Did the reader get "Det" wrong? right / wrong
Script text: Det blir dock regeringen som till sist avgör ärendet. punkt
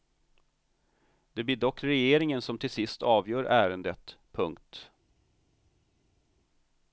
right